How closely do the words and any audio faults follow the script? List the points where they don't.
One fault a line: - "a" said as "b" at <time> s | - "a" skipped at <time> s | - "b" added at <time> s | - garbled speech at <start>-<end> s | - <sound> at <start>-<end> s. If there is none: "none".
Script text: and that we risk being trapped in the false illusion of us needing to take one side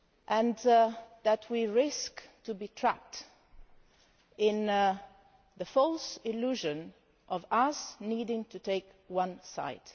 none